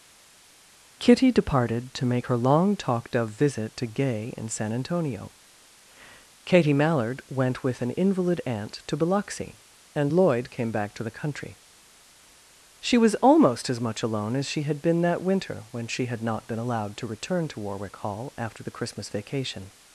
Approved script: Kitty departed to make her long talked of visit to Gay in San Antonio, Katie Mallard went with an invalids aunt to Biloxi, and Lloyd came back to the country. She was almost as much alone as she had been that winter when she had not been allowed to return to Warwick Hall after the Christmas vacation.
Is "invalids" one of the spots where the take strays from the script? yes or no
yes